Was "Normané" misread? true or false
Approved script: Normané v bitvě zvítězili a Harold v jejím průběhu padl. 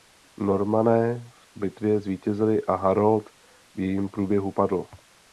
false